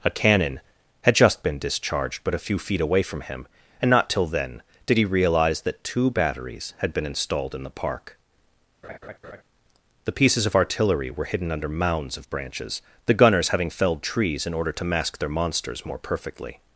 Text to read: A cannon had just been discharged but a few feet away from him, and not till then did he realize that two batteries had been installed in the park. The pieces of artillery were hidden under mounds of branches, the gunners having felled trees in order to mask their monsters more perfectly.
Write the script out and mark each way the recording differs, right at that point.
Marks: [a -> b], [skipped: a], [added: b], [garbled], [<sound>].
A cannon had just been discharged but a few feet away from him, and not till then did he realize that two batteries had been installed in the park. [laugh] The pieces of artillery were hidden under mounds of branches, the gunners having felled trees in order to mask their monsters more perfectly.